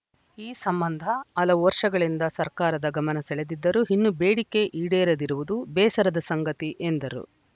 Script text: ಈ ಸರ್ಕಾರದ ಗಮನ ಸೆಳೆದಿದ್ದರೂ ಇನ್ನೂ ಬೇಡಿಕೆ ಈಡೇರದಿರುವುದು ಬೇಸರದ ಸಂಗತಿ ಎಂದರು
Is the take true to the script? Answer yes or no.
no